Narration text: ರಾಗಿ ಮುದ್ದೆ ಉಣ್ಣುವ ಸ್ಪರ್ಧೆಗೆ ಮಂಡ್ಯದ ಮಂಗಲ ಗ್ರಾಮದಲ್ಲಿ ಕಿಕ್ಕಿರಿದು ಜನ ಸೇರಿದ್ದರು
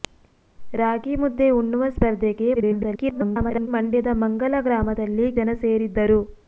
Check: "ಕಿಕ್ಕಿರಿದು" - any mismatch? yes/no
yes